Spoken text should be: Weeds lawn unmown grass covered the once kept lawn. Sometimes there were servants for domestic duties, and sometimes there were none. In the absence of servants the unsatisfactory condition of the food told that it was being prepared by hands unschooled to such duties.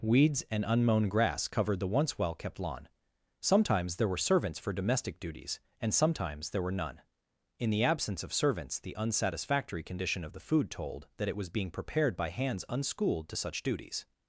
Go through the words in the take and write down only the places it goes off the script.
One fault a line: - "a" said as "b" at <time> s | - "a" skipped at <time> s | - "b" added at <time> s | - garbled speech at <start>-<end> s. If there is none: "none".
- "lawn" said as "and" at 0.5 s
- "well" added at 2.2 s